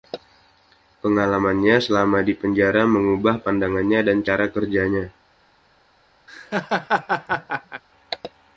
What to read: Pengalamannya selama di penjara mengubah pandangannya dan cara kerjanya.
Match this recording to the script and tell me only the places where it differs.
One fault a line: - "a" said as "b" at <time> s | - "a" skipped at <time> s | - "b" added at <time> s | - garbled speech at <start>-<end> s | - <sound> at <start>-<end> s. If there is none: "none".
- laugh at 6.3-7.8 s